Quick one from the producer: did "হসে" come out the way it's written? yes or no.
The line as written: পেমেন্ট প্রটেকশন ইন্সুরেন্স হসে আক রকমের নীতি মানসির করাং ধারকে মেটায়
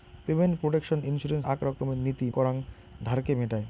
no